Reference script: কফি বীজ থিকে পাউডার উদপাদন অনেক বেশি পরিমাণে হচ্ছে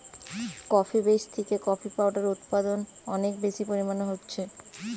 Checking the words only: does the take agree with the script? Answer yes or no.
no